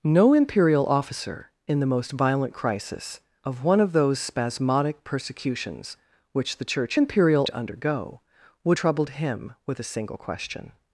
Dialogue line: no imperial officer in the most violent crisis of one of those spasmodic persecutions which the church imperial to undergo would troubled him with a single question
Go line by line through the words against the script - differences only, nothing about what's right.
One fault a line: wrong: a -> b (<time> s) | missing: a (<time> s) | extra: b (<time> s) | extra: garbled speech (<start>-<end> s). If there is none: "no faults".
no faults